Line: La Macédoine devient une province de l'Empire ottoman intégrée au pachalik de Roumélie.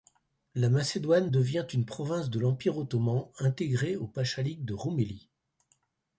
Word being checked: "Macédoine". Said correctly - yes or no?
yes